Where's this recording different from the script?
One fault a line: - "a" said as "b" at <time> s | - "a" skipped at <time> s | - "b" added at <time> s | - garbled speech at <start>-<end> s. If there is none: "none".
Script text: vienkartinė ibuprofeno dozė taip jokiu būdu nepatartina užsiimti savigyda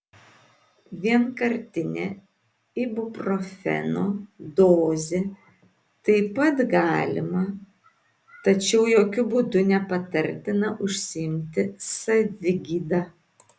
- "pat galima tačiau" added at 6.4 s